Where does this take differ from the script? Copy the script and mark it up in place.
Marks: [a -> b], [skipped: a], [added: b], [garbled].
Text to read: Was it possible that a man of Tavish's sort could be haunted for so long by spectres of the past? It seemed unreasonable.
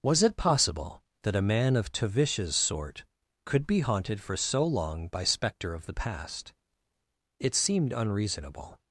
Was it possible that a man of Tavish's sort could be haunted for so long by [spectres -> spectre] of the past? It seemed unreasonable.